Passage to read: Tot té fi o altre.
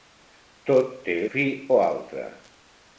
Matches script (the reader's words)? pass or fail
pass